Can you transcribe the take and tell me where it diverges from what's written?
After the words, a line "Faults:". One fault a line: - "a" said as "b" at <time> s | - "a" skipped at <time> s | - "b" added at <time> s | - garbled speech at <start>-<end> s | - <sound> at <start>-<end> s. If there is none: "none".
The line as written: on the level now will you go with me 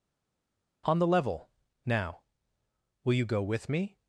on the level now will you go with me
Faults:
none